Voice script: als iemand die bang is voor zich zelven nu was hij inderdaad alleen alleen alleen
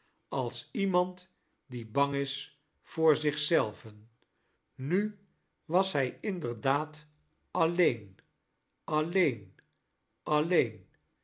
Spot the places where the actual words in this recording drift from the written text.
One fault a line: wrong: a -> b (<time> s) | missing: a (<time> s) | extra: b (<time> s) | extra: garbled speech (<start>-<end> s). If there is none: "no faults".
no faults